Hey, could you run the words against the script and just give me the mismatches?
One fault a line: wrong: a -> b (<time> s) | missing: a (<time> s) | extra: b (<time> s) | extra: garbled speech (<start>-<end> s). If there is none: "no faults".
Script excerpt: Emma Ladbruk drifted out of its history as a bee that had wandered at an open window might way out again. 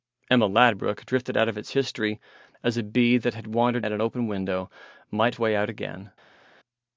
no faults